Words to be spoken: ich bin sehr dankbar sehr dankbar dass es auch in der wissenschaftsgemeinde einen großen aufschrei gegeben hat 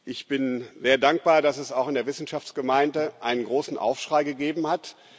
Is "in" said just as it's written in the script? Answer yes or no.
yes